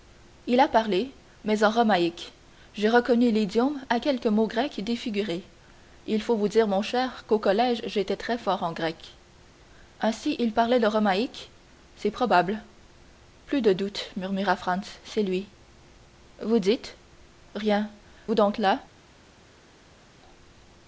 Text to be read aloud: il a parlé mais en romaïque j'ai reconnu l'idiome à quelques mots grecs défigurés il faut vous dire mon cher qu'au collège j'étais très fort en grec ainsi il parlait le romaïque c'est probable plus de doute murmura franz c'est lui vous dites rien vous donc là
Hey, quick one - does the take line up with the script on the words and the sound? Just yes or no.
yes